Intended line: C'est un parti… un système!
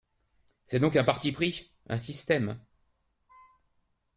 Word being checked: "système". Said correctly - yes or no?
yes